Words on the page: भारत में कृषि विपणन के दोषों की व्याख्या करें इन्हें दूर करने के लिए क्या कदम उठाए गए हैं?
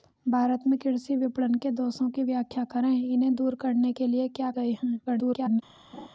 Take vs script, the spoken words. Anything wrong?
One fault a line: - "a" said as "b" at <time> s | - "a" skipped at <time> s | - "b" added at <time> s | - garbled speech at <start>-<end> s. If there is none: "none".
- "कदम उठाए" skipped at 4.5 s
- garbled speech at 5.1-5.6 s